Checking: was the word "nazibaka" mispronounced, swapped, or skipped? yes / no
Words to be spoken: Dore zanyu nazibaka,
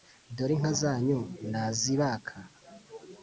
no